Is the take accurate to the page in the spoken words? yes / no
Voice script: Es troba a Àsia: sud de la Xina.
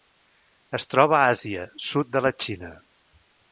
yes